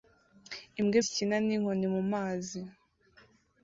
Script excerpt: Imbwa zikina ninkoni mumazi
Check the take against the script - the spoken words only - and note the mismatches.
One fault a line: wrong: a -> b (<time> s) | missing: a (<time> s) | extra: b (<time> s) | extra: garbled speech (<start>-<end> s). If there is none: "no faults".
no faults